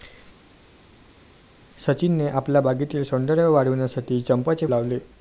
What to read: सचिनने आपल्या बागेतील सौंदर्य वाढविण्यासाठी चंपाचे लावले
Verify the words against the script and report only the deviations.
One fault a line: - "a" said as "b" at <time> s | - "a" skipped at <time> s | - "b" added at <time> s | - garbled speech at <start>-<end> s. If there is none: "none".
none